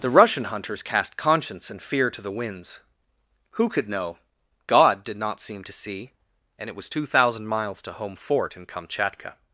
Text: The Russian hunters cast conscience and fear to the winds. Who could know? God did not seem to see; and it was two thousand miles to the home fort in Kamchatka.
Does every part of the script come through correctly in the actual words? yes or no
no